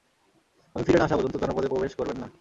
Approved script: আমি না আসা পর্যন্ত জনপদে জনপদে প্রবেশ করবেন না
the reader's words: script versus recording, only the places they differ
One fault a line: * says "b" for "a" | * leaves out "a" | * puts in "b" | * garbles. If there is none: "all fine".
* puts in "ফিরে"
* leaves out "জনপদে"